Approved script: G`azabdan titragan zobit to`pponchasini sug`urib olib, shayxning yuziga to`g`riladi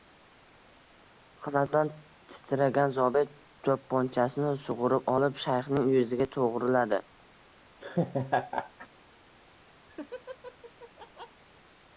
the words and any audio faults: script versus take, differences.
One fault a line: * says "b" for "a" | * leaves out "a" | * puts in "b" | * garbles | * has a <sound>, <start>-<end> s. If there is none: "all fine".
* has a laugh, 7.8-8.9 s
* has a laugh, 9.9-11.4 s